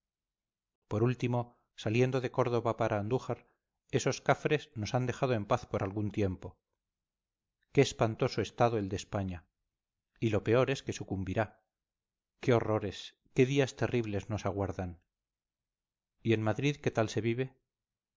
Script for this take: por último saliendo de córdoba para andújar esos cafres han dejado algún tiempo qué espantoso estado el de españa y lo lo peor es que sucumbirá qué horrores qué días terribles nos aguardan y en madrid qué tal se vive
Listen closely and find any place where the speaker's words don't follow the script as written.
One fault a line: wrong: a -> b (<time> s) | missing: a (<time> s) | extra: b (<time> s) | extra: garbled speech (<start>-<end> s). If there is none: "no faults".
extra: nos (4.8 s)
extra: en paz por (5.3 s)
missing: lo (10.4 s)